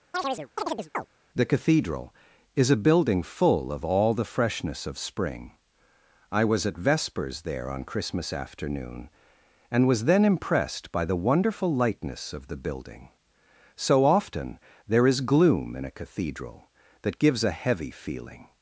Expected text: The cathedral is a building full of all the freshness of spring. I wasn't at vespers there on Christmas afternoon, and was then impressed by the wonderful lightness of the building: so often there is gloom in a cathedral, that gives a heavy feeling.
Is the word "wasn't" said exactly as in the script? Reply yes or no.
no